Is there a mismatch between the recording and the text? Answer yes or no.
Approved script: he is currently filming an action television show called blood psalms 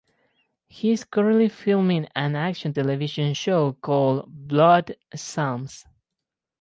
no